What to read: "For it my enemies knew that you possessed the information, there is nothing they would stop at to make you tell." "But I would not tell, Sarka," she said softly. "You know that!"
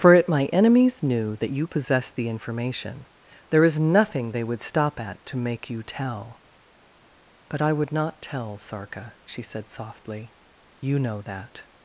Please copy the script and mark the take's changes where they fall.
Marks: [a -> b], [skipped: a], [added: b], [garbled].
"For it my enemies knew that you possessed the information, there is nothing they would stop at to make you tell." "But I would not tell, Sarka," she said softly. "You know that!"